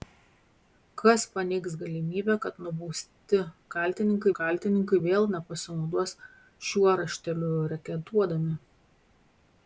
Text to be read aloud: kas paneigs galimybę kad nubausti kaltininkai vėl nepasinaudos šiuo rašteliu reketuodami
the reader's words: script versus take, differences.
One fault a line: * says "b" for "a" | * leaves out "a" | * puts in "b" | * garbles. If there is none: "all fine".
* puts in "kaltininkai"